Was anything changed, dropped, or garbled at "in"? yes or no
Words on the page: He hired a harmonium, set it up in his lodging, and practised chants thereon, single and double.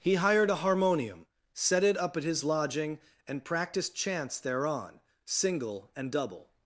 yes